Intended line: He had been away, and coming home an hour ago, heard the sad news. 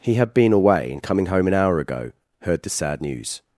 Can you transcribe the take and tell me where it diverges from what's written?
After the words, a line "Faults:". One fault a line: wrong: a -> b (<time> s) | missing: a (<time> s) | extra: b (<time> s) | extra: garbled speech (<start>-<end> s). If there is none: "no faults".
He had been away, and coming home an hour ago, heard the sad news.
Faults:
no faults